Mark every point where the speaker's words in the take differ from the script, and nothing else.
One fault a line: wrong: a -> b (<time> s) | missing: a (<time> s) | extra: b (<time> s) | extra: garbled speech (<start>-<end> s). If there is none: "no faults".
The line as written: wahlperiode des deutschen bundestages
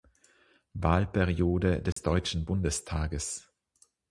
no faults